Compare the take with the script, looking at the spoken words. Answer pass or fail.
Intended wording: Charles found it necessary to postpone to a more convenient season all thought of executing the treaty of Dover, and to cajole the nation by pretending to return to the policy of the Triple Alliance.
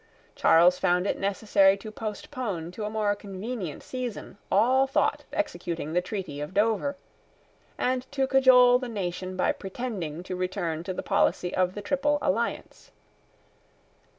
fail